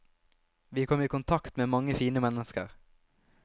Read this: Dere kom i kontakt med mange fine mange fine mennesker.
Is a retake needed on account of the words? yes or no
yes